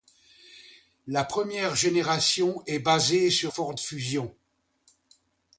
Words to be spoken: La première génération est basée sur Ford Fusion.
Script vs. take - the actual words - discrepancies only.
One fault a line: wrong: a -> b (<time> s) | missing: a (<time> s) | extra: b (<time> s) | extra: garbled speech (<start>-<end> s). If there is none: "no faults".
no faults